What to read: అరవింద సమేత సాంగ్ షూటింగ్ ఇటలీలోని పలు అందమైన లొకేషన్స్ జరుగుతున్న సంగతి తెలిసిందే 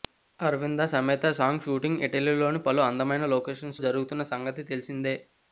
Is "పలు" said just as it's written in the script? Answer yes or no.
yes